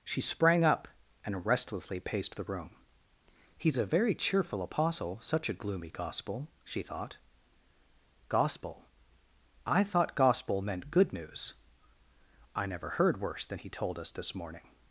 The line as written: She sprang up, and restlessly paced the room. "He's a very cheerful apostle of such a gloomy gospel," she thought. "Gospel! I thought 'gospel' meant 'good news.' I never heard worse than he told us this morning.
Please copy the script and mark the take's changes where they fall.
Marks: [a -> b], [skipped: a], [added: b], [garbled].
She sprang up, and restlessly paced the room. "He's a very cheerful apostle [skipped: of] such a gloomy gospel," she thought. "Gospel! I thought 'gospel' meant 'good news.' I never heard worse than he told us this morning.